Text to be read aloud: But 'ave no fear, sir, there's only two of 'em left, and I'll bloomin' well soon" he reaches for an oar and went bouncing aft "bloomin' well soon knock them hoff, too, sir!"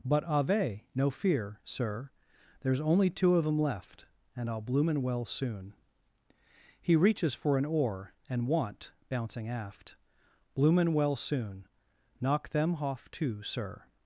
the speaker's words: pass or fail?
fail